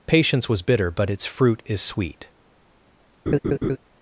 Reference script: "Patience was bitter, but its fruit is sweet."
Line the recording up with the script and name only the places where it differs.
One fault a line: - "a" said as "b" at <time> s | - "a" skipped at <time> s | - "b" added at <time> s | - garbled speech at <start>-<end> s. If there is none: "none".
none